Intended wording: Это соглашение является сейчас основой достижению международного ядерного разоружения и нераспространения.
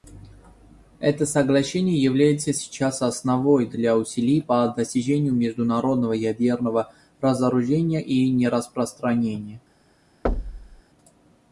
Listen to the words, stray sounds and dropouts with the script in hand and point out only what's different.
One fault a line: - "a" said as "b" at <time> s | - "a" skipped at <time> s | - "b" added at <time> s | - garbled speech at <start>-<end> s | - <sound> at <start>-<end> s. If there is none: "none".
- "для усилий по" added at 3.7 s
- thud at 10.2-10.8 s